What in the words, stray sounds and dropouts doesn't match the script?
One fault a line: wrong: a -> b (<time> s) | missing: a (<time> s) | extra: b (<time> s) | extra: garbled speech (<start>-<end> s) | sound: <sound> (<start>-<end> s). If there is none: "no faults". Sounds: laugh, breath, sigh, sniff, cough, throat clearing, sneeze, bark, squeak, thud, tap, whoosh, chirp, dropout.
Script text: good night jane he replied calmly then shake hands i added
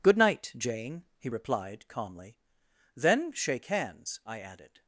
no faults